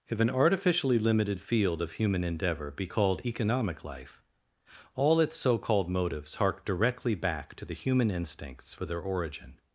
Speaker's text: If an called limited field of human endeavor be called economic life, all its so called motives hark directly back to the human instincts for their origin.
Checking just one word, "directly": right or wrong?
right